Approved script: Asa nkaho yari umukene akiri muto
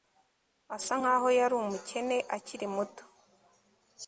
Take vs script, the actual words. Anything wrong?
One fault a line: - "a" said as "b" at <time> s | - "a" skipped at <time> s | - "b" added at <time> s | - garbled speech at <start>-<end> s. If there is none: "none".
none